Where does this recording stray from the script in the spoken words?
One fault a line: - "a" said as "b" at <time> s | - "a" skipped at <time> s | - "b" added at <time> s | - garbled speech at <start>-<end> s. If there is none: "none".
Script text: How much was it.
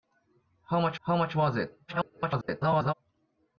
- "how much" added at 1.0 s
- garbled speech at 1.9-2.9 s